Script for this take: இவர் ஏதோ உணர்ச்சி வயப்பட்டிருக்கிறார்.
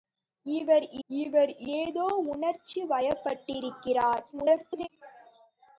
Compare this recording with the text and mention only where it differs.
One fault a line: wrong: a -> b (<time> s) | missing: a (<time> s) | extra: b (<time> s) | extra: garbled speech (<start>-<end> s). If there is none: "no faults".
extra: இவர் (1.1 s)
extra: garbled speech (4.3-4.9 s)